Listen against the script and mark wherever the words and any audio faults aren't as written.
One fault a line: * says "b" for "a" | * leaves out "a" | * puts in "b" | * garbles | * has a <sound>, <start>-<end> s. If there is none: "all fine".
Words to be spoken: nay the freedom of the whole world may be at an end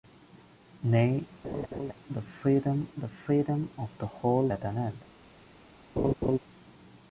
* has a laugh, 1.4-1.9 s
* puts in "the freedom"
* leaves out "world may be"
* has a laugh, 6.0-6.4 s